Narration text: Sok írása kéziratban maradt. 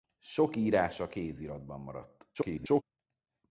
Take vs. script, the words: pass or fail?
fail